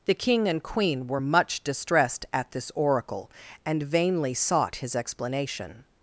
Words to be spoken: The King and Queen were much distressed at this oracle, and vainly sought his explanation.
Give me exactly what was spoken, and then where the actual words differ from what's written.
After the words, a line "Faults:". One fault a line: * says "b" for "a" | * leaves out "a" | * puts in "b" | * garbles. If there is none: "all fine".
The King and Queen were much distressed at this oracle, and vainly sought his explanation.
Faults:
all fine